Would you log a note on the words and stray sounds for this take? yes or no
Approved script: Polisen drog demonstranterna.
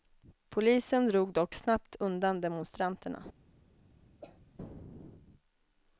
yes